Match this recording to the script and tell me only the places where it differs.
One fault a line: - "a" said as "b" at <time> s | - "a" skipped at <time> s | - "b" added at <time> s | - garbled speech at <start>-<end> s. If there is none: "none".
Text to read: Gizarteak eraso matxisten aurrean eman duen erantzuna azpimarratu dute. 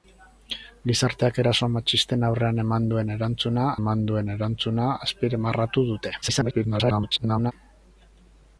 - "eman duen erantzuna" added at 3.8 s
- garbled speech at 6.2-7.5 s